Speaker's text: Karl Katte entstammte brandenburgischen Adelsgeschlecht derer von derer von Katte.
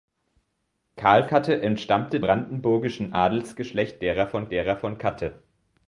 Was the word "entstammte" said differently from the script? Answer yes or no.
no